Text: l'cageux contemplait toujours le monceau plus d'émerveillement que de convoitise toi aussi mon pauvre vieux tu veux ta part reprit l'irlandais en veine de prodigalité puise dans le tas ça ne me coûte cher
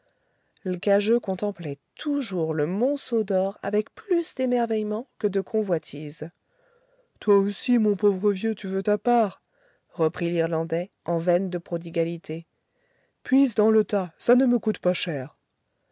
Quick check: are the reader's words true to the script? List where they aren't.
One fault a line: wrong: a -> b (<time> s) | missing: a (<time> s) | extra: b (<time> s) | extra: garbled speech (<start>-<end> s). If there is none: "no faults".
extra: d'or avec (3.2 s)
extra: pas (14.8 s)